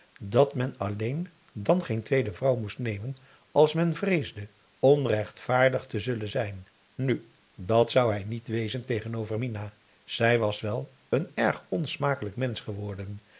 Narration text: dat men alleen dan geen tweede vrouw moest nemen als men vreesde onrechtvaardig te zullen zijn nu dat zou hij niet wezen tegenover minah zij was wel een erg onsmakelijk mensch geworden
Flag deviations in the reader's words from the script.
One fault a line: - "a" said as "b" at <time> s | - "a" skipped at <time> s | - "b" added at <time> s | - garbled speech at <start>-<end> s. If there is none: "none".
none